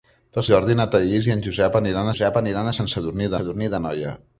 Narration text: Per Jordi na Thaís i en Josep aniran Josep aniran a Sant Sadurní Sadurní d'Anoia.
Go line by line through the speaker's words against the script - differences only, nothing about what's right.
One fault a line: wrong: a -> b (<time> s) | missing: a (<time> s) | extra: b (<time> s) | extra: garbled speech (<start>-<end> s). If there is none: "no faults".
no faults